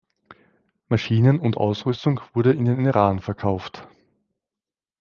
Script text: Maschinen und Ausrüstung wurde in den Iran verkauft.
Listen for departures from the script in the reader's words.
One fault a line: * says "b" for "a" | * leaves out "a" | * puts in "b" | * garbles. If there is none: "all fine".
all fine